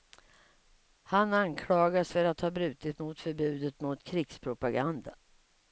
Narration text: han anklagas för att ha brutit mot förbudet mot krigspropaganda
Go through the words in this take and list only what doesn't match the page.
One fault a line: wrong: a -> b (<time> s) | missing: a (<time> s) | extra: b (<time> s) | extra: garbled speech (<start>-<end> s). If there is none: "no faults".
no faults